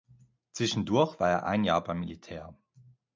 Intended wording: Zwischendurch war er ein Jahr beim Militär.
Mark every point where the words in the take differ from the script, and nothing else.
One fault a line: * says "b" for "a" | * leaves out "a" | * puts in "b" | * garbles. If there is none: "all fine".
all fine